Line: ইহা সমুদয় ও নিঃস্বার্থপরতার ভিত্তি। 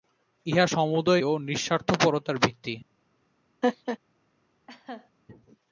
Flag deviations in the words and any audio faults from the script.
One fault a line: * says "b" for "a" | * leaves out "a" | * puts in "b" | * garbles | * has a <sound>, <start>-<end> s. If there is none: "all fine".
* has a laugh, 3.6-4.0 s
* has a laugh, 4.7-5.1 s